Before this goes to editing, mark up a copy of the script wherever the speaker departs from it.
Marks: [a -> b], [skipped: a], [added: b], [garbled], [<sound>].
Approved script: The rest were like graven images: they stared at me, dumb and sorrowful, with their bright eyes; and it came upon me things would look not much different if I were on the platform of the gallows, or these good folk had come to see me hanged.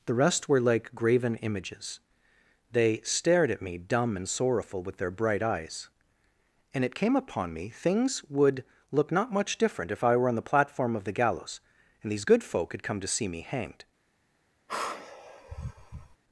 The rest were like graven images: they stared at me, dumb and sorrowful, with their bright eyes; and it came upon me things would look not much different if I were on the platform of the gallows, [or -> and] these good folk had come to see me hanged. [sigh]